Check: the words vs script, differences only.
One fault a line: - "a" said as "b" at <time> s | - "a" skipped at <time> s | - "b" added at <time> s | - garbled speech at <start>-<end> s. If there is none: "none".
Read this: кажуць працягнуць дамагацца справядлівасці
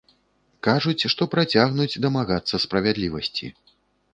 - "што" added at 1.1 s